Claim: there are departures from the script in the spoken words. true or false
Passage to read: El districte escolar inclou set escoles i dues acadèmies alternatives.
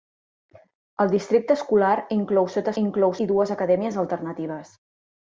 true